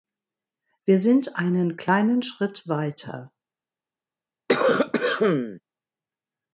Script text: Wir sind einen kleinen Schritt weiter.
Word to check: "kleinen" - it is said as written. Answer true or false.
true